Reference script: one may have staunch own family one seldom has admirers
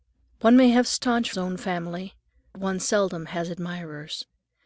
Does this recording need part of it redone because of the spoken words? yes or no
no